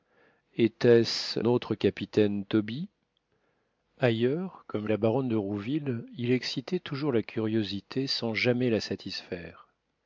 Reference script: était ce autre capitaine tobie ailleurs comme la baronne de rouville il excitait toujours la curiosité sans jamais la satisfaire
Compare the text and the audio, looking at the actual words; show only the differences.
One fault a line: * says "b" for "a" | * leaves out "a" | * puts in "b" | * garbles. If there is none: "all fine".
all fine